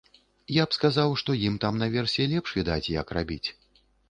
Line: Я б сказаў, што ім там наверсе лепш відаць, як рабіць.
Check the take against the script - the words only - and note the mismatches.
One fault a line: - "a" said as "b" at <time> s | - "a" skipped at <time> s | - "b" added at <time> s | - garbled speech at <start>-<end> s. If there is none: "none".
none